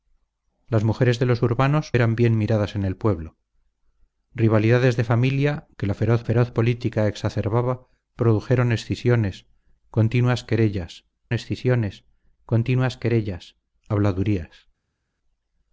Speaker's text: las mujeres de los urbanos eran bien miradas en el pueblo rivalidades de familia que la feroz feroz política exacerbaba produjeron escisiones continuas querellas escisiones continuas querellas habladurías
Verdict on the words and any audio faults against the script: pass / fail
pass